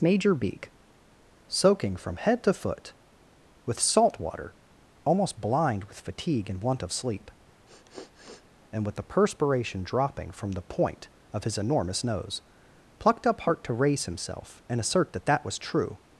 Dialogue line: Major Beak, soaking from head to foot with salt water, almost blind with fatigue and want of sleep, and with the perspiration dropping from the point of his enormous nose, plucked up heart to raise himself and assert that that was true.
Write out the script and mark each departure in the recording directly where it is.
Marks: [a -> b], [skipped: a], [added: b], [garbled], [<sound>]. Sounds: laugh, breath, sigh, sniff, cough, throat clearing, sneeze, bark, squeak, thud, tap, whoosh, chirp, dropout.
Major Beak, soaking from head to foot with salt water, almost blind with fatigue and want of sleep, [sniff] and with the perspiration dropping from the point of his enormous nose, plucked up heart to raise himself and assert that that was true.